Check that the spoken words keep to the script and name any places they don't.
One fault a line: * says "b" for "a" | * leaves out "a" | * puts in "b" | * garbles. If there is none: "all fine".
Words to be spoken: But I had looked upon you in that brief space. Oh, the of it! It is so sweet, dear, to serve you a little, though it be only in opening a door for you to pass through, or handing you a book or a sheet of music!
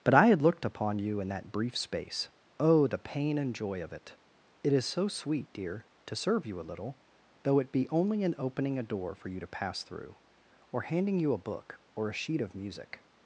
* puts in "pain and joy"